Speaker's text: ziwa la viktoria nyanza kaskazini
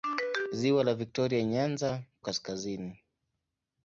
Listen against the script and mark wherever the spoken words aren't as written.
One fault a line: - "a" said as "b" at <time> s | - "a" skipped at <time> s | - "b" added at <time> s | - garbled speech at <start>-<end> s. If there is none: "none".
none